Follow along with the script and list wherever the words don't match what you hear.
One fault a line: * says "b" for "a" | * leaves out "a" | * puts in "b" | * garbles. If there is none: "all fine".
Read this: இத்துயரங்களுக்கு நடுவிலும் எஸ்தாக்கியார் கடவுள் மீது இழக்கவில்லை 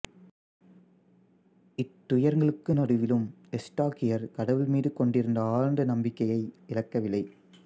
* puts in "கொண்டிருந்த ஆழ்ந்த நம்பிக்கையை"